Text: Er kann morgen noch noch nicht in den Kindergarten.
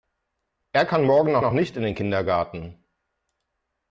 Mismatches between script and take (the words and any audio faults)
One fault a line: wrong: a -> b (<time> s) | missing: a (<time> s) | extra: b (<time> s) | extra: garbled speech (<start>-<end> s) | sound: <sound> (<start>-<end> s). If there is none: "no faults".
no faults